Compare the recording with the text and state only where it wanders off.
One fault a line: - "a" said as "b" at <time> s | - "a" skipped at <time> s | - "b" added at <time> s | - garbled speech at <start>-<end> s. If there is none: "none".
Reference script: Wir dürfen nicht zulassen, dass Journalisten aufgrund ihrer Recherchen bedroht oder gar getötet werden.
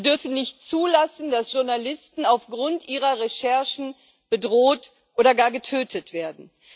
none